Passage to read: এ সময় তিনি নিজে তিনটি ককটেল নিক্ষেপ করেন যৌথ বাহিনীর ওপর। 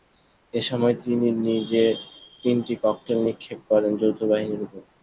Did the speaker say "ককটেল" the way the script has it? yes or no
yes